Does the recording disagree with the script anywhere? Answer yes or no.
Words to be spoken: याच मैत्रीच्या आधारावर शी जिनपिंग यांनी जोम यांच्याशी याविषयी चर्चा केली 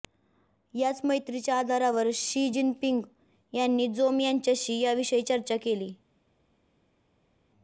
no